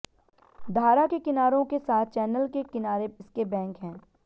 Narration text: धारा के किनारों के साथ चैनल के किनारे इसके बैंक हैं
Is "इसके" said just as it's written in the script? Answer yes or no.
yes